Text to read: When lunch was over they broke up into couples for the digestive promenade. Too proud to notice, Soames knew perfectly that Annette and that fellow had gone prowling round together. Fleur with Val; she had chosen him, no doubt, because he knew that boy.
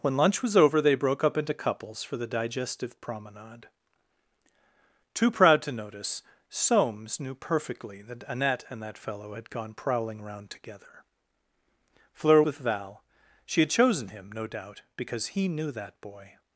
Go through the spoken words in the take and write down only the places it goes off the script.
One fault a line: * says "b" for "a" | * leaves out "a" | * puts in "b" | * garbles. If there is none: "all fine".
all fine